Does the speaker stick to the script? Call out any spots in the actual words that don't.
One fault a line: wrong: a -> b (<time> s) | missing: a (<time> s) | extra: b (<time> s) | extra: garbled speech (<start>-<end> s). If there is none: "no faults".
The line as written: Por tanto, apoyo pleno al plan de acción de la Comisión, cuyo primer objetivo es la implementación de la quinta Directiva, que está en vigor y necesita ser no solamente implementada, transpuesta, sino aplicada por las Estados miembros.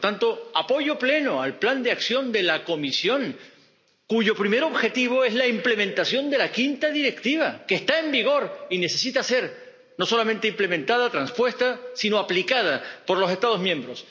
wrong: las -> los (13.2 s)